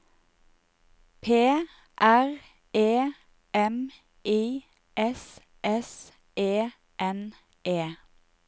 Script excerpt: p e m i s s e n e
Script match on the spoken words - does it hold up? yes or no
no